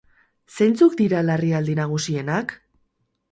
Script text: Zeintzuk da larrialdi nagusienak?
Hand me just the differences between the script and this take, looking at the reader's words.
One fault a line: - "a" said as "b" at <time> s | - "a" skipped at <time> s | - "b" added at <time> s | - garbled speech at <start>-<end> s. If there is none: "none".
- "da" said as "dira" at 1.0 s